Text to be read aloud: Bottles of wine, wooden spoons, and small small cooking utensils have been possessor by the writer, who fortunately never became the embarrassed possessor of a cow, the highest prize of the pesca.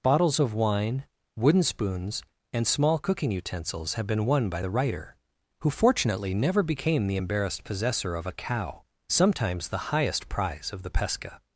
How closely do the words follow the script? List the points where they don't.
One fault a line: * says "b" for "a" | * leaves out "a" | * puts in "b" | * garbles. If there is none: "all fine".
* leaves out "small"
* says "won" for "possessor"
* puts in "sometimes"